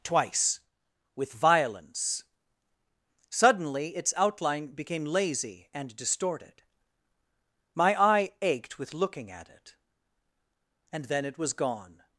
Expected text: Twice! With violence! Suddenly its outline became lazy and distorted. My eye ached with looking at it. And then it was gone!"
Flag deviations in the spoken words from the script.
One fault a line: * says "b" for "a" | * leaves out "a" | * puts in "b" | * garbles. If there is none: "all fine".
all fine